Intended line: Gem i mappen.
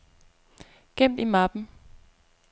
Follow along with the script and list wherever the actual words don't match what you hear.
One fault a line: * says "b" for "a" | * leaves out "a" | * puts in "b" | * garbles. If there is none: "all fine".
all fine